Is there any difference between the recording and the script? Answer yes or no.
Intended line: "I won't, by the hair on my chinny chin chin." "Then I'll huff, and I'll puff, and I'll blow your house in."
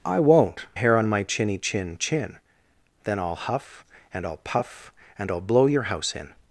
yes